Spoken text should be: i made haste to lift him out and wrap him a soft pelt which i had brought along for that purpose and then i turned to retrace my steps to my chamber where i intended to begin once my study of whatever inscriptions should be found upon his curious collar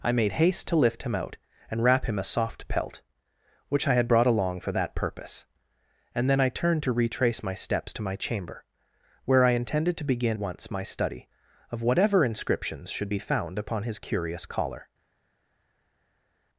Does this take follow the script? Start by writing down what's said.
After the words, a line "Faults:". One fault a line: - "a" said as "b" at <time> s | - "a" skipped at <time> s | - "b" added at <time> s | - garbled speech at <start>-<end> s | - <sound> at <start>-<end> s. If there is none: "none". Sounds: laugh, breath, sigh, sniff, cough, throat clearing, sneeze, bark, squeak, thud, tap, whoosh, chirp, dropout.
i made haste to lift him out and wrap him a soft pelt which i had brought along for that purpose and then i turned to retrace my steps to my chamber where i intended to begin once my study of whatever inscriptions should be found upon his curious collar
Faults:
none